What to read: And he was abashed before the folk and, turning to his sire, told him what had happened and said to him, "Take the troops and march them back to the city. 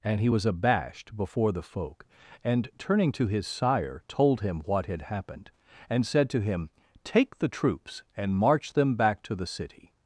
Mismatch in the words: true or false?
false